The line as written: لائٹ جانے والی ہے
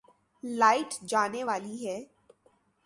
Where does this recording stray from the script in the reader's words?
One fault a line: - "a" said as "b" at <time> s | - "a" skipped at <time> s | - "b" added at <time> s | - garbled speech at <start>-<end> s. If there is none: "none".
none